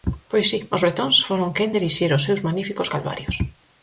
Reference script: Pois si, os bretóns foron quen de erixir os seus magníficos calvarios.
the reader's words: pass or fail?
pass